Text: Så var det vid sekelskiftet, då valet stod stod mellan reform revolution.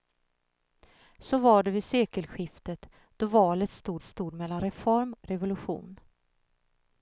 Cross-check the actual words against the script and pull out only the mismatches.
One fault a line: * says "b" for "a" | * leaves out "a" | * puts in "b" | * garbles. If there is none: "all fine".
all fine